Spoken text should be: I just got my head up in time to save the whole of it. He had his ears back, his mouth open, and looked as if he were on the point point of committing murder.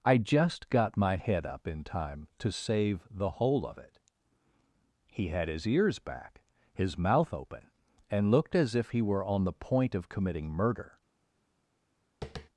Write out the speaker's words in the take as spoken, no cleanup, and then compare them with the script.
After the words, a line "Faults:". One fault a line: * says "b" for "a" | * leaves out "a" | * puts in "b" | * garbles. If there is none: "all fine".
I just got my head up in time to save the whole of it. He had his ears back, his mouth open, and looked as if he were on the point of committing murder.
Faults:
* leaves out "point"